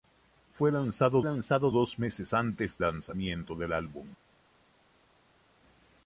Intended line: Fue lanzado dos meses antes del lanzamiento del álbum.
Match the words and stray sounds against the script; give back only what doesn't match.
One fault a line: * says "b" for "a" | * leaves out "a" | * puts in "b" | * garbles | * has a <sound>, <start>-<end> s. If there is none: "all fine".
* puts in "lanzado"
* leaves out "del"